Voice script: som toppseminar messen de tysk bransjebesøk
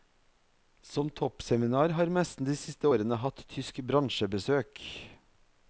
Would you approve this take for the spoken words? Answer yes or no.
no